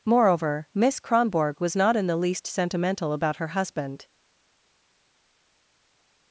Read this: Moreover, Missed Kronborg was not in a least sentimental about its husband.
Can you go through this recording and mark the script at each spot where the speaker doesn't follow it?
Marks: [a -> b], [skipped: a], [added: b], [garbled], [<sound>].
Moreover, [Missed -> Miss] Kronborg was not in [a -> the] least sentimental about [its -> her] husband.